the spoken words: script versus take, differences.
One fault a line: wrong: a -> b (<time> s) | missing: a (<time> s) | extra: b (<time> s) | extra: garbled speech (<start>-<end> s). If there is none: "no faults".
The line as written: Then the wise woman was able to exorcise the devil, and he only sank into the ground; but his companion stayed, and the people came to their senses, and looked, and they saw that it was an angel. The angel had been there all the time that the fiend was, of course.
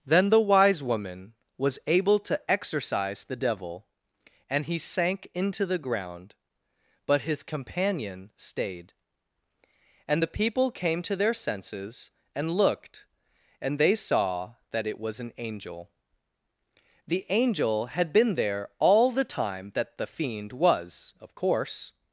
missing: only (4.8 s)